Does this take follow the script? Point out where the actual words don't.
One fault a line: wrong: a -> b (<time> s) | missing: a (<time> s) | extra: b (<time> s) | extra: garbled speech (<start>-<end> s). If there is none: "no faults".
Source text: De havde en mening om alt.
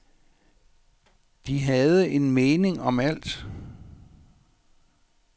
no faults